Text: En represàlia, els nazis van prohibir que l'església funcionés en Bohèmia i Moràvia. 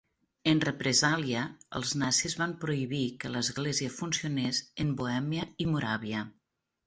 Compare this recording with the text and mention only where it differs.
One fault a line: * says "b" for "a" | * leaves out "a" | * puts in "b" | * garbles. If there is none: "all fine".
all fine